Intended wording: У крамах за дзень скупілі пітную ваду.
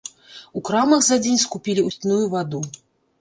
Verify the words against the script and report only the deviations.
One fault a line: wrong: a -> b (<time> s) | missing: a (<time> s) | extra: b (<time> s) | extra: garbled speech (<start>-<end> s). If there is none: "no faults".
no faults